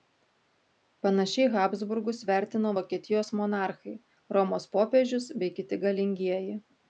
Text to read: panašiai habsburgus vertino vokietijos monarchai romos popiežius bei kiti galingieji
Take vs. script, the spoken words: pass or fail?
pass